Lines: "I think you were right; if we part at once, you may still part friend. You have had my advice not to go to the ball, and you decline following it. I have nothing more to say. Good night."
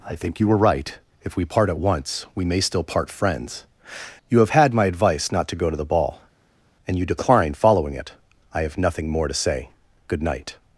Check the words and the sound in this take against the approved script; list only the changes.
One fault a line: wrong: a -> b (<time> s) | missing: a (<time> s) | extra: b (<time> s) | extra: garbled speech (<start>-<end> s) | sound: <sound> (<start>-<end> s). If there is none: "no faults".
wrong: you -> we (2.3 s)
wrong: friend -> friends (3.1 s)